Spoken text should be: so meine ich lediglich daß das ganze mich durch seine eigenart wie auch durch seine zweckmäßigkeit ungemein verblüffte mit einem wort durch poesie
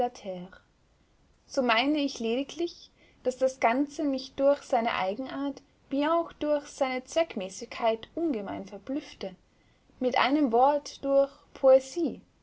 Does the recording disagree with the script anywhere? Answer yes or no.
no